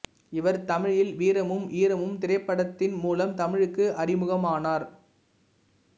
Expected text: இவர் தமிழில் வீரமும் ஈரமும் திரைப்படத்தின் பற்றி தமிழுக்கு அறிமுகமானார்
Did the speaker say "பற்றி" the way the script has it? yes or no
no